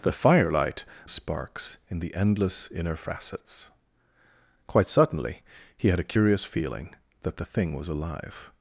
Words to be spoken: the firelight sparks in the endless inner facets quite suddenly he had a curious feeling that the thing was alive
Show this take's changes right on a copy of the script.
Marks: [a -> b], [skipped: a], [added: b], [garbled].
the firelight sparks in the endless inner facets quite suddenly he had a curious feeling that the thing was alive